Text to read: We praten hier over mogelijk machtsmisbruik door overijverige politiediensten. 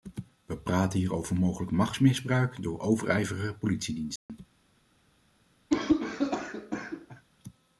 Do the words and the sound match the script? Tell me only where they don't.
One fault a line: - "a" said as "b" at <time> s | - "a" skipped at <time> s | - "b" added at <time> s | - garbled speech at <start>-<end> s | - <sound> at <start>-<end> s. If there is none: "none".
- dropout at 4.2-4.3 s
- cough at 5.7-7.2 s